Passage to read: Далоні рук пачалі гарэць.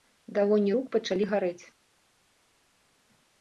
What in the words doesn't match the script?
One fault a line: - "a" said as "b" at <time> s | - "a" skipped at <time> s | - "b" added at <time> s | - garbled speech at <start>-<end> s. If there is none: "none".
none